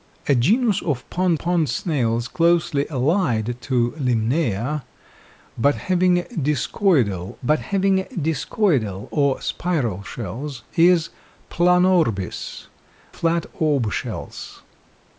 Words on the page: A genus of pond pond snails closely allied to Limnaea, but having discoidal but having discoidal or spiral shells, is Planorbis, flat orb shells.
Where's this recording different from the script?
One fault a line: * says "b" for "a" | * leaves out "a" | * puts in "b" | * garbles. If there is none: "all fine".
all fine